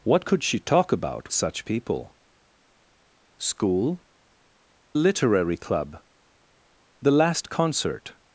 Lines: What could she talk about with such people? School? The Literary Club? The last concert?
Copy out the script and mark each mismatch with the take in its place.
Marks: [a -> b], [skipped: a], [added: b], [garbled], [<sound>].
What could she talk about [skipped: with] such people? School? [skipped: The] Literary Club? The last concert?